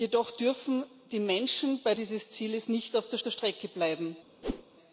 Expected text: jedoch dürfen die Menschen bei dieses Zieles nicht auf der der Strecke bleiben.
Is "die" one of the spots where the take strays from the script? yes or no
no